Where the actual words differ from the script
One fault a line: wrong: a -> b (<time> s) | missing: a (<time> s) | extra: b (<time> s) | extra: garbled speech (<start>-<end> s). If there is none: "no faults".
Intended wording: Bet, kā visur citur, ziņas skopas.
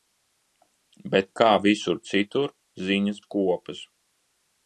no faults